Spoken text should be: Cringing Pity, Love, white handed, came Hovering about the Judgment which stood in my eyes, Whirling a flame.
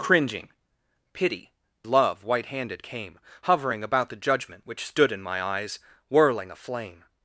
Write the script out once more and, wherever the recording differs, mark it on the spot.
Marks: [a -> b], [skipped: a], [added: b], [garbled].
Cringing Pity, Love, white handed, came Hovering about the Judgment which stood in my eyes, Whirling a flame.